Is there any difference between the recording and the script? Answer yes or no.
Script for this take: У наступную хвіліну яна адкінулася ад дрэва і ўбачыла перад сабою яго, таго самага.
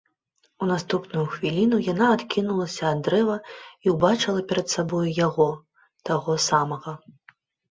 no